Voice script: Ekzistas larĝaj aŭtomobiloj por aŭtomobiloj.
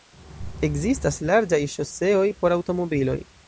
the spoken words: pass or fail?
fail